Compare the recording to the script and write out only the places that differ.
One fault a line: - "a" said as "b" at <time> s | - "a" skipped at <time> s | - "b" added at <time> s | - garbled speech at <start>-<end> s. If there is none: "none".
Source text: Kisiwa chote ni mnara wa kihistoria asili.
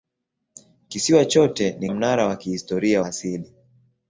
none